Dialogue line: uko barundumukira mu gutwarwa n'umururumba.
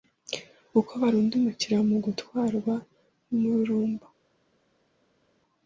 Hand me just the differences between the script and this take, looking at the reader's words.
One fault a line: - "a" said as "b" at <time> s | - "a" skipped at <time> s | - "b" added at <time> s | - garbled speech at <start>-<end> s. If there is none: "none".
none